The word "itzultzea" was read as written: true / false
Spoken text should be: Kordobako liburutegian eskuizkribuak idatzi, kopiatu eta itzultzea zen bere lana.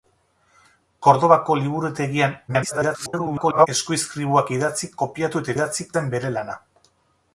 false